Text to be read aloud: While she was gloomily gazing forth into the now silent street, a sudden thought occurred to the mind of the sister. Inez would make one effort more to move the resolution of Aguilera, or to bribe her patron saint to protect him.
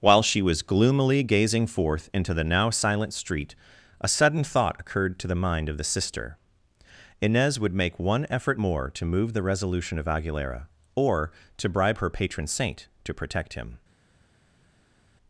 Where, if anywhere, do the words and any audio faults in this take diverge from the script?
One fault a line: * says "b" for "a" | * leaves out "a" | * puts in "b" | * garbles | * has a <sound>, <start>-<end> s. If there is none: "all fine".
all fine